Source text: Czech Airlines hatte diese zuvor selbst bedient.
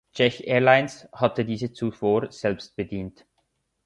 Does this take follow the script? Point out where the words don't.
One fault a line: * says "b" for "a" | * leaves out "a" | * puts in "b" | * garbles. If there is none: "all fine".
all fine